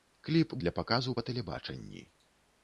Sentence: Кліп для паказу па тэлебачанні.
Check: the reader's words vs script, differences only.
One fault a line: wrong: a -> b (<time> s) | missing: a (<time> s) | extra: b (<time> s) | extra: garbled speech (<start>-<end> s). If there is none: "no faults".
no faults